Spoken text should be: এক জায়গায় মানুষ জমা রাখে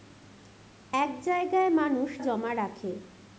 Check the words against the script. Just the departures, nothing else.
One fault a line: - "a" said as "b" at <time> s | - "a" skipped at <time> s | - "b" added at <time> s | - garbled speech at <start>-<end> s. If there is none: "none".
none